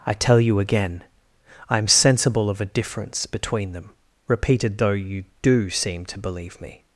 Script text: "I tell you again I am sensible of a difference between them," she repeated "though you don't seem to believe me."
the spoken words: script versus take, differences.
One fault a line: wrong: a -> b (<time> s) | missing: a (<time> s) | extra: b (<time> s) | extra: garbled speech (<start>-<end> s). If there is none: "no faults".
missing: she (3.9 s)
wrong: don't -> do (5.4 s)